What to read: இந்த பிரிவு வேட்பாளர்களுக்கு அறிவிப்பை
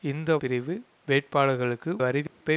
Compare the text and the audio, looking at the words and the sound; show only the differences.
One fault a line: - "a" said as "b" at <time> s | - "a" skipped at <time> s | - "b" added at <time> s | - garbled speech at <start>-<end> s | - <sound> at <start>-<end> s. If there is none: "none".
- dropout at 2.3-2.4 s